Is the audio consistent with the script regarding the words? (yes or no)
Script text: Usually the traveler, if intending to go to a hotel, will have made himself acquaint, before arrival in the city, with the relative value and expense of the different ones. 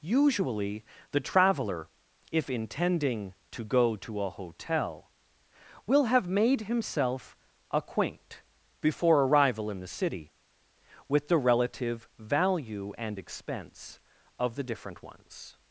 yes